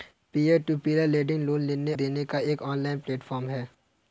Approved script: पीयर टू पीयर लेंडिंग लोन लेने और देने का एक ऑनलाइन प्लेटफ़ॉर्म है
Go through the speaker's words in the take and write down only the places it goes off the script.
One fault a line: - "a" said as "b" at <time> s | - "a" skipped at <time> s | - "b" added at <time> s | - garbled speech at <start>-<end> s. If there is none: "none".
- "और" skipped at 1.9 s